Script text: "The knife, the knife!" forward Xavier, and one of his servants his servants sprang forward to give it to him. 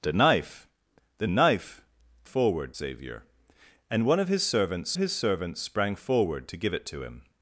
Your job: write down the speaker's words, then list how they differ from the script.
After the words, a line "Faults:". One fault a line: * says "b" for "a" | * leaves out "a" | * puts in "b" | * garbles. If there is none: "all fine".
"The knife, the knife!" forward Xavier, and one of his servants his servants sprang forward to give it to him.
Faults:
all fine